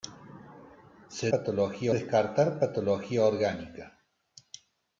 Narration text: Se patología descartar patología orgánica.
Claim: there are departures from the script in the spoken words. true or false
false